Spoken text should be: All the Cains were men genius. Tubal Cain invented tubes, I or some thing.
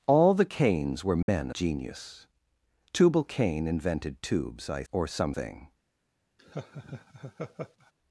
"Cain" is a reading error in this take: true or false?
false